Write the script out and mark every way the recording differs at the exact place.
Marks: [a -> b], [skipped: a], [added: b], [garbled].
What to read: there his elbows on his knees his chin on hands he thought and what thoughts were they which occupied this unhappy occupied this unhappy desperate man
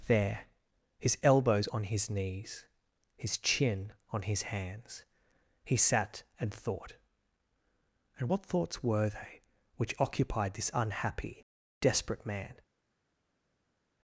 there his elbows on his knees his chin on [added: his] hands he [added: sat and] thought and what thoughts were they which occupied this unhappy [skipped: occupied this unhappy] desperate man